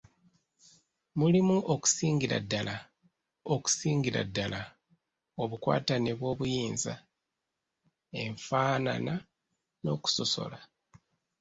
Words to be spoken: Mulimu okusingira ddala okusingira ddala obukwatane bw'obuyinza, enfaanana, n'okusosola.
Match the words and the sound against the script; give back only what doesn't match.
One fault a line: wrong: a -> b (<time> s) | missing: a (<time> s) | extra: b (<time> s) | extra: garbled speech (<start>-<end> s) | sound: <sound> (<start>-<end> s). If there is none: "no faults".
no faults